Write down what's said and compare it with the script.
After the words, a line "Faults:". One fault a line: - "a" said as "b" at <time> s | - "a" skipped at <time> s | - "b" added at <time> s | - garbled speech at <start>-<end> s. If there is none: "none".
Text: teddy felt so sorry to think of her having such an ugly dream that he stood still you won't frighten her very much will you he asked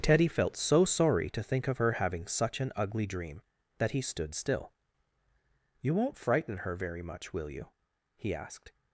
teddy felt so sorry to think of her having such an ugly dream that he stood still you won't frighten her very much will you he asked
Faults:
none